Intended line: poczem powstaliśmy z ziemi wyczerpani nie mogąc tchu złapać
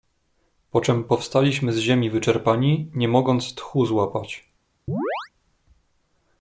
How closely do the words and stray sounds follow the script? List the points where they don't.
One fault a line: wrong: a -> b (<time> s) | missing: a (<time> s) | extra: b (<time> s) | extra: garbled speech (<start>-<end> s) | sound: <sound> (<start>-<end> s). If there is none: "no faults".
sound: chirp (4.9-5.3 s)